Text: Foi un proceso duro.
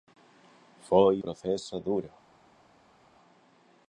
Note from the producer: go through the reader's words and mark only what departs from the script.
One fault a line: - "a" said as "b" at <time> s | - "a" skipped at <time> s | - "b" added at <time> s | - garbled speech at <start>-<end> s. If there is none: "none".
- "un" skipped at 1.2 s